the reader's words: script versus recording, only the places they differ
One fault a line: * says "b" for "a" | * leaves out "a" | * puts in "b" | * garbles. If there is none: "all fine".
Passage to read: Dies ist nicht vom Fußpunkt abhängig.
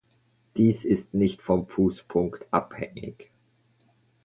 all fine